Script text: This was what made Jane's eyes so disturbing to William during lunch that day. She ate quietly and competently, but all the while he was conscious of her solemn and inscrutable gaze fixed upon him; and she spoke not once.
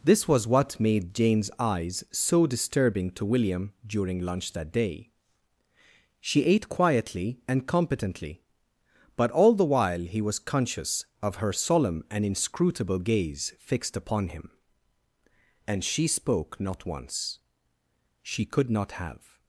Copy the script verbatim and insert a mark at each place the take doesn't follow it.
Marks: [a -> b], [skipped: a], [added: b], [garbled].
This was what made Jane's eyes so disturbing to William during lunch that day. She ate quietly and competently, but all the while he was conscious of her solemn and inscrutable gaze fixed upon him; and she spoke not once. [added: She could not have]